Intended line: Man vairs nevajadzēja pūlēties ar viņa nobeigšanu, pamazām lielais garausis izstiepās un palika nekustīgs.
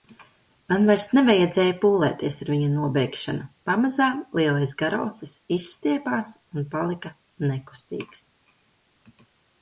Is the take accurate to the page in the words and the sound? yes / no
yes